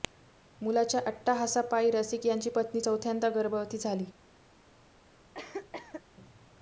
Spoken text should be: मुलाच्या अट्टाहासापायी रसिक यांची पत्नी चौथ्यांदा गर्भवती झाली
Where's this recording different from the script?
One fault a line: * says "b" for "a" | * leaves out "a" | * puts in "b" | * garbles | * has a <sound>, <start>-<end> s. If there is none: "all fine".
* has a cough, 5.3-6.0 s